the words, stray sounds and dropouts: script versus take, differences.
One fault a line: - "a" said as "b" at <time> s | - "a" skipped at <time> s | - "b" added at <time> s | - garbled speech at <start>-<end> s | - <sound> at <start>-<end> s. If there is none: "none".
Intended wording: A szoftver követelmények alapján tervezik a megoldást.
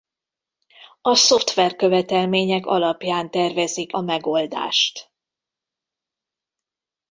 none